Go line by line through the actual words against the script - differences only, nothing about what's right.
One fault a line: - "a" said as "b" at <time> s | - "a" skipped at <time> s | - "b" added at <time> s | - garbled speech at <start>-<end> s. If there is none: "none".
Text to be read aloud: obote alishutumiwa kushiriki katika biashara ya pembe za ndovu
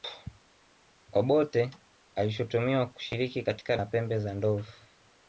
- "biashara" skipped at 3.8 s